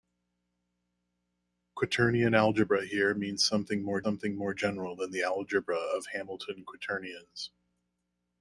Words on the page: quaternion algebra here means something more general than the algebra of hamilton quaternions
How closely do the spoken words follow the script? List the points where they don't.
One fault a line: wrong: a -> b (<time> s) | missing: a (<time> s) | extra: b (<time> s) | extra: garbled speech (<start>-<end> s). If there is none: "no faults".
extra: something more (4.0 s)